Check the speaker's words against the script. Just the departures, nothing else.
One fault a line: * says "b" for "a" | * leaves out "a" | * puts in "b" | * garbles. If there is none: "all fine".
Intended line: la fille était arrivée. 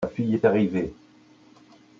* says "est" for "était"